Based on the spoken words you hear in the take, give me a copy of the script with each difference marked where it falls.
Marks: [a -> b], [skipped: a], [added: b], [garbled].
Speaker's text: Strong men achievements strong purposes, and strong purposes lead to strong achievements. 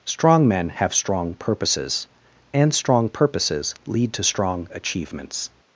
Strong men [achievements -> have] strong purposes, and strong purposes lead to strong achievements.